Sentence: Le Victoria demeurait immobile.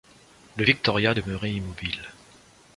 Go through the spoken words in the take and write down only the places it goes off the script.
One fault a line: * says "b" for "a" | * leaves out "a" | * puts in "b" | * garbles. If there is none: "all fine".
all fine